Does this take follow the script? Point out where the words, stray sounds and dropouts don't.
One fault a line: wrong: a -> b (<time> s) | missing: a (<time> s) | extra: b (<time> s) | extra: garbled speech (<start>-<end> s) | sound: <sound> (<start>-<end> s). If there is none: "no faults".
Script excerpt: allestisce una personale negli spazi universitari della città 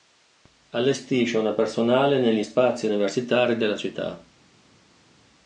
no faults